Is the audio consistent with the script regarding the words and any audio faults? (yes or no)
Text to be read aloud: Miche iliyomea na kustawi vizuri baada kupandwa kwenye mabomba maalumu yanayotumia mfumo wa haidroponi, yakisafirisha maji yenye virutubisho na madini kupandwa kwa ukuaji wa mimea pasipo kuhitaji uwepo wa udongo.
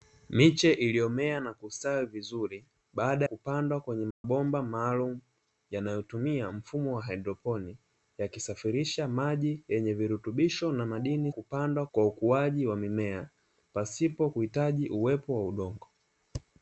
no